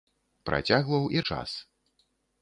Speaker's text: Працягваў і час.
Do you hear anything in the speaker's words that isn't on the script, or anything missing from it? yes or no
no